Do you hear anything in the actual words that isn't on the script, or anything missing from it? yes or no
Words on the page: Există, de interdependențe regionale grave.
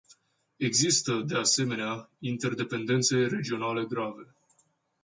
yes